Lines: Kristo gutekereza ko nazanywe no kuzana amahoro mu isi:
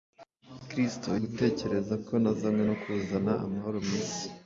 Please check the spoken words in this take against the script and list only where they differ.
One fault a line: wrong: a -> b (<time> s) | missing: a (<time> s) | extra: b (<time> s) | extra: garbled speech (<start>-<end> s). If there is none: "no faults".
no faults